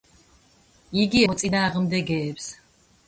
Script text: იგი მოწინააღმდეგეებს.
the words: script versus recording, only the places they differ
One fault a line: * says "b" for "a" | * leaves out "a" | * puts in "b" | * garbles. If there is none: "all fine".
all fine